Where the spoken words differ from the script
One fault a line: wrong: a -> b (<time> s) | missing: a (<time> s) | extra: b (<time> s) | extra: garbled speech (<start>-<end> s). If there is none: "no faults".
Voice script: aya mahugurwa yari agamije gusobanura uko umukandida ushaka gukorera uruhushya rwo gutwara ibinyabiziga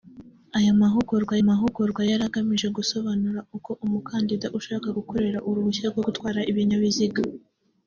extra: mahugurwa (1.5 s)